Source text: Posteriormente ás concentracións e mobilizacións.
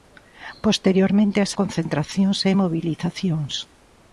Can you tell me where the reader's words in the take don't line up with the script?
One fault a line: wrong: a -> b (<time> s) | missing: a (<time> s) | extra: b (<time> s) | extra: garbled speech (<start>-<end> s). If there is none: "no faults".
no faults